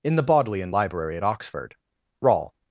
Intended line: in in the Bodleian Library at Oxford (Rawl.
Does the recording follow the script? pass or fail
fail